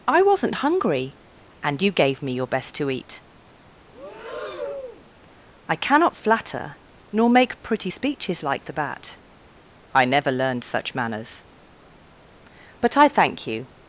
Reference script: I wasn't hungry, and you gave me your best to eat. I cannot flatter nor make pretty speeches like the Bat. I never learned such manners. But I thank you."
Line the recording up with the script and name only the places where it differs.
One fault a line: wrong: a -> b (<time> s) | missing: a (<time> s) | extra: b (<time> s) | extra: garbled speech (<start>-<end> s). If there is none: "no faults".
no faults